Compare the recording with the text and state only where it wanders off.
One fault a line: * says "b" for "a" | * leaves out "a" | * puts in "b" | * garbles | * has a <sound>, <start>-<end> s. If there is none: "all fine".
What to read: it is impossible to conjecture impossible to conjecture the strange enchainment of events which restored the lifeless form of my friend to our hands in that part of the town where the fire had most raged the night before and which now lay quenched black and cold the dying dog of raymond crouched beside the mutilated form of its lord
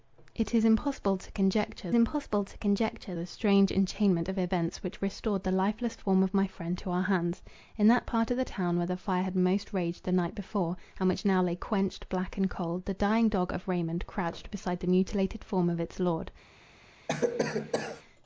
* has a cough, 17.1-18.0 s